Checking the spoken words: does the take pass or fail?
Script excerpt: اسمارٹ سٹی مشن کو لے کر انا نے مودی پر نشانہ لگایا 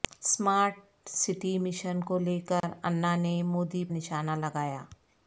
fail